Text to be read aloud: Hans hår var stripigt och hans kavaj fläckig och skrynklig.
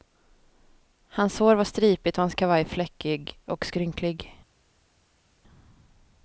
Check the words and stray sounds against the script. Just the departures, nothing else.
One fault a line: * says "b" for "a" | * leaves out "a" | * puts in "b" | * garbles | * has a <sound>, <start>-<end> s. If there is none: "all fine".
all fine